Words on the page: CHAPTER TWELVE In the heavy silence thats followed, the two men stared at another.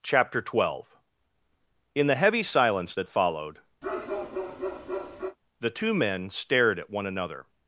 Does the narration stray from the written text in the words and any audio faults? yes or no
yes